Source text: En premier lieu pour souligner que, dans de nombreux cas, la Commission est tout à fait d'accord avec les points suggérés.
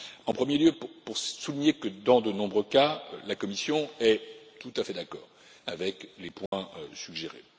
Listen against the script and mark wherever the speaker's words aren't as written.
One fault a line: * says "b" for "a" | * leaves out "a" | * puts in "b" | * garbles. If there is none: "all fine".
all fine